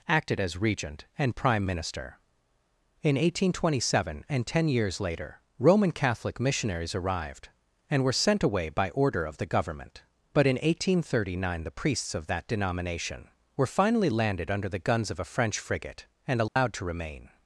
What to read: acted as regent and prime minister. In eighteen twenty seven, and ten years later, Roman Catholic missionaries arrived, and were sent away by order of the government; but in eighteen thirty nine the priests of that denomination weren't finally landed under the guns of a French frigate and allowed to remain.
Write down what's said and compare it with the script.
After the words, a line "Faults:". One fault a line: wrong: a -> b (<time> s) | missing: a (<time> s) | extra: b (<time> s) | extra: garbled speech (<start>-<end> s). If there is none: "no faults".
acted as regent and prime minister. In eighteen twenty seven, and ten years later, Roman Catholic missionaries arrived, and were sent away by order of the government; but in eighteen thirty nine the priests of that denomination were finally landed under the guns of a French frigate and allowed to remain.
Faults:
wrong: weren't -> were (13.6 s)